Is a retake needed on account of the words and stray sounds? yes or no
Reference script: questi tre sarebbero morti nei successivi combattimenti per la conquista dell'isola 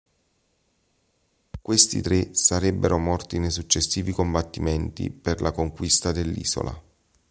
no